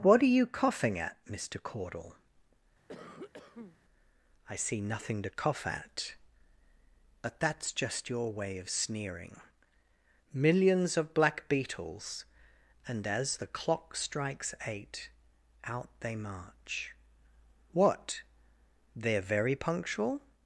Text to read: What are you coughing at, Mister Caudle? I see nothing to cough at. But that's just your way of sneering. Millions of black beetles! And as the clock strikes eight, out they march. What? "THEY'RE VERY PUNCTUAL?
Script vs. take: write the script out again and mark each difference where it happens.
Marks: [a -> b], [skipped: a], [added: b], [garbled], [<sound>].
What are you coughing at, Mister Caudle? [cough] I see nothing to cough at. But that's just your way of sneering. Millions of black beetles! And as the clock strikes eight, out they march. What? "THEY'RE VERY PUNCTUAL?